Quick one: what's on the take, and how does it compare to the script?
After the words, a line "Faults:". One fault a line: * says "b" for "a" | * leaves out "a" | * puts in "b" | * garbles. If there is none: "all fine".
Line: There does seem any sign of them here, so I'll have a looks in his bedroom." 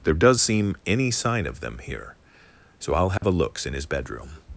There does seem any sign of them here, so I'll have a looks in his bedroom."
Faults:
all fine